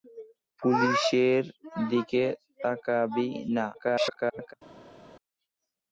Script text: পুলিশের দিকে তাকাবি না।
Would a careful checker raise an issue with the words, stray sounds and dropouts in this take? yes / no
yes